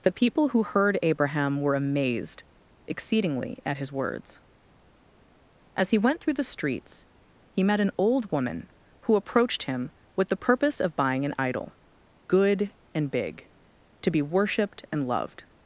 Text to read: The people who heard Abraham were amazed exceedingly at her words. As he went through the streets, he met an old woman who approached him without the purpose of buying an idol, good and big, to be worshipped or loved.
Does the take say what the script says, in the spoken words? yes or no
no